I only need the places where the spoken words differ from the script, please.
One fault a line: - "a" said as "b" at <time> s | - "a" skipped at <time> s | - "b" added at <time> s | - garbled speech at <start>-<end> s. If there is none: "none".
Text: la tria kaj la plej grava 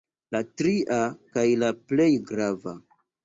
none